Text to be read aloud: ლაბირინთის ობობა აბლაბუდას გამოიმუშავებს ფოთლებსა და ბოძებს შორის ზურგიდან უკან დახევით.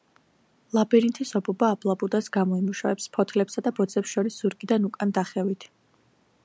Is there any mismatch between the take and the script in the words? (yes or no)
no